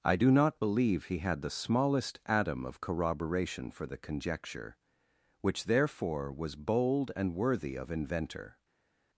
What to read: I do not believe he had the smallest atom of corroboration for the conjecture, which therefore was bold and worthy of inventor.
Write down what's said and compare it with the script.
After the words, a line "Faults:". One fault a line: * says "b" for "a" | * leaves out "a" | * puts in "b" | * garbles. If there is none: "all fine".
I do not believe he had the smallest atom of corroboration for the conjecture, which therefore was bold and worthy of inventor.
Faults:
all fine